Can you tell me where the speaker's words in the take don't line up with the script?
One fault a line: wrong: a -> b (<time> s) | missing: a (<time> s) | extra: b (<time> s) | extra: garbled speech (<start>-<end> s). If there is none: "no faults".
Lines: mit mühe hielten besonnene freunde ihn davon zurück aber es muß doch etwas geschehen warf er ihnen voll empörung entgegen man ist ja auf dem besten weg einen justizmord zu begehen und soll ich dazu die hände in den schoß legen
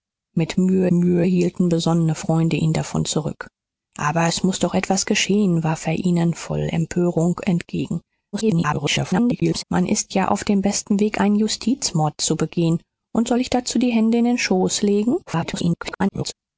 extra: mühe (0.9 s)
extra: garbled speech (8.3-9.6 s)
extra: garbled speech (15.3-16.3 s)